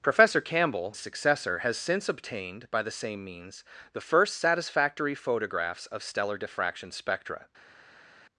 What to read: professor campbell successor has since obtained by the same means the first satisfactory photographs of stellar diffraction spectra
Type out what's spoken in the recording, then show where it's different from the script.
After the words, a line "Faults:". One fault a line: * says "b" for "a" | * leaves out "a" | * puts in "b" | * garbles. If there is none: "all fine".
professor campbell successor has since obtained by the same means the first satisfactory photographs of stellar diffraction spectra
Faults:
all fine